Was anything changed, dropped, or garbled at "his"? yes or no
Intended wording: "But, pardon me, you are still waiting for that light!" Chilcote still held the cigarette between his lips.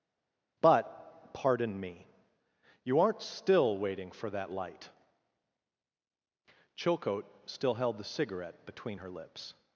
yes